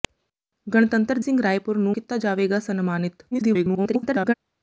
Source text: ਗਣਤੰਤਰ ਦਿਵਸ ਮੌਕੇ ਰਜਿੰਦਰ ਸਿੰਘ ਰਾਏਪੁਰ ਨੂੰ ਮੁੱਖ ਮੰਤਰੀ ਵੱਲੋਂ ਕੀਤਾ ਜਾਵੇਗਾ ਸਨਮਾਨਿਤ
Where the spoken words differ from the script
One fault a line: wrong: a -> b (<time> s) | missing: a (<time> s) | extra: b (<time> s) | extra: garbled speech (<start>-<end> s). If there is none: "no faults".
missing: ਦਿਵਸ ਮੌਕੇ ਰਜਿੰਦਰ (1.2 s)
missing: ਮੁੱਖ ਮੰਤਰੀ ਵੱਲੋਂ (2.0 s)
extra: garbled speech (3.3-4.3 s)